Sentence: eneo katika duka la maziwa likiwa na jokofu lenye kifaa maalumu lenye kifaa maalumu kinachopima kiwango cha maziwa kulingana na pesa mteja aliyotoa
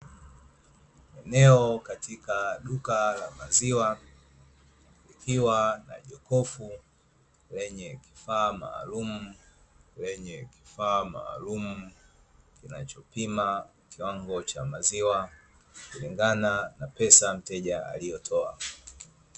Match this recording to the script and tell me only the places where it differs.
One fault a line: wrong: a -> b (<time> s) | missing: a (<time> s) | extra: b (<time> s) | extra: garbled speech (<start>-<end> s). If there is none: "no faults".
no faults